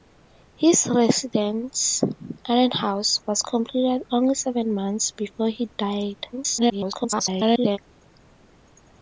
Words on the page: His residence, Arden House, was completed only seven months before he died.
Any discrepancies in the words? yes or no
yes